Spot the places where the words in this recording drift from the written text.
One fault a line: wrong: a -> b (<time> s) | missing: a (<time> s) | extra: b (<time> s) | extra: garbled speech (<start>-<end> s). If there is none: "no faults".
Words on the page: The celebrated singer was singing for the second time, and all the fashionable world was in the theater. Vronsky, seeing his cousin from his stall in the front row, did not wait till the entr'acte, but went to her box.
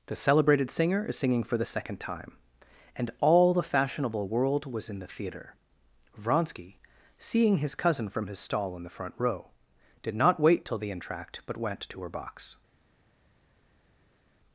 wrong: was -> is (1.1 s)